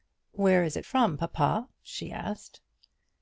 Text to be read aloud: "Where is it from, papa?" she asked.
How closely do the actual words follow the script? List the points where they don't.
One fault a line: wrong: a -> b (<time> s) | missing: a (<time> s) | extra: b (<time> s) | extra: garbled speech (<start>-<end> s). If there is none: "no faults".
no faults